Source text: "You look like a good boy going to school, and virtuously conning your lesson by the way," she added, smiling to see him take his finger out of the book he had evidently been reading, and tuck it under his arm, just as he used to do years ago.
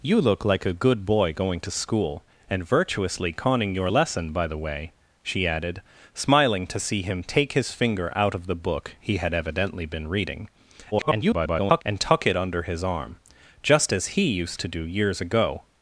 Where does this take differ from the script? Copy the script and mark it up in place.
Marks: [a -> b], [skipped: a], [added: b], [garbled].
"You look like a good boy going to school, and virtuously conning your lesson by the way," she added, smiling to see him take his finger out of the book he had evidently been reading, [garbled] and tuck it under his arm, just as he used to do years ago.